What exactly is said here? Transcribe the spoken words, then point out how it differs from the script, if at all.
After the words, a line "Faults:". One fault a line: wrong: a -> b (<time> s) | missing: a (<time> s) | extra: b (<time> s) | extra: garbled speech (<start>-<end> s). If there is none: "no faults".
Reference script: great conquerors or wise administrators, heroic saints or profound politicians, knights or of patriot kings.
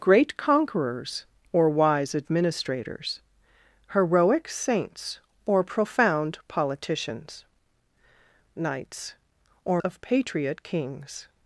great conquerors or wise administrators, heroic saints or profound politicians, knights or of patriot kings.
Faults:
no faults